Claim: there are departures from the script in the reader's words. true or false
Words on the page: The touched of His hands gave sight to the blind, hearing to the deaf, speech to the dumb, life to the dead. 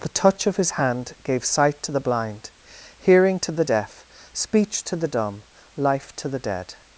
true